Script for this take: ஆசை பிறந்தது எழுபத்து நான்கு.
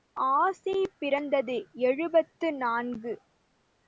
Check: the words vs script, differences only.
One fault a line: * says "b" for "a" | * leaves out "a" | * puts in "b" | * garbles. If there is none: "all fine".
all fine